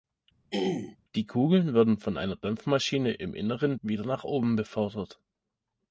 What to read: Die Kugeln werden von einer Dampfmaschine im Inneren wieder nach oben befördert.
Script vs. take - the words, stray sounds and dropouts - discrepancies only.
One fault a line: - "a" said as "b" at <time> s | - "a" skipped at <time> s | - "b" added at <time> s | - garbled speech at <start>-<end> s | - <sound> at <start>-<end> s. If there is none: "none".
- throat clearing at 0.5-1.0 s